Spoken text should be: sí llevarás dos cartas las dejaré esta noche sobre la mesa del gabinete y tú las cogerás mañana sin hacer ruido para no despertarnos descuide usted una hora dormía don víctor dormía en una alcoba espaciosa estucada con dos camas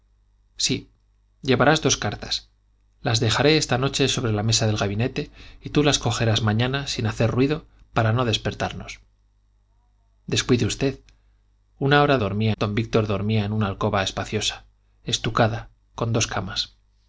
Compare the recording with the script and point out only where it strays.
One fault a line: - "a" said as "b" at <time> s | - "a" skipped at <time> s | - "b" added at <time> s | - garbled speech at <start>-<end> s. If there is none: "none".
none